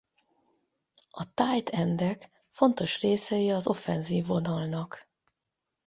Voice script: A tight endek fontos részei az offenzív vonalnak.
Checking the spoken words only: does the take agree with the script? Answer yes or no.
yes